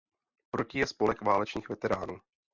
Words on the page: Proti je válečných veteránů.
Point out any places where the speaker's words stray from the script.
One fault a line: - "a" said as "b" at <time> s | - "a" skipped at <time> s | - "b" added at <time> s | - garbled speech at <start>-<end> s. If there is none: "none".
- "spolek" added at 0.9 s